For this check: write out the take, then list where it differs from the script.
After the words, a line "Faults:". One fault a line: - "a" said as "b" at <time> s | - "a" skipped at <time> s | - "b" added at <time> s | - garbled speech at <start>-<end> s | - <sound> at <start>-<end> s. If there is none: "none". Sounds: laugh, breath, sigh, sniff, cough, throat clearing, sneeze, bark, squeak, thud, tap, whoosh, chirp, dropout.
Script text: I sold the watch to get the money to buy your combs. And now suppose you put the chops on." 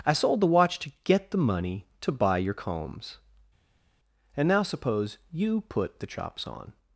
I sold the watch to get the money to buy your combs. And now suppose you put the chops on."
Faults:
none